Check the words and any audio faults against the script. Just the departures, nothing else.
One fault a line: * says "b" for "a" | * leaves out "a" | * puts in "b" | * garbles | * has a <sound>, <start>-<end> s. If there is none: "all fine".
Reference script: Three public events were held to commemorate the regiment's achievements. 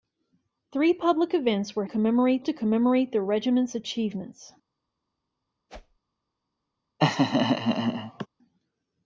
* says "commemorate" for "held"
* has a whoosh, 5.7-6.0 s
* has a laugh, 7.0-8.3 s